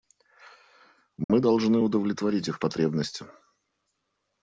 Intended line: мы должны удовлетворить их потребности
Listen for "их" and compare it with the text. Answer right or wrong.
right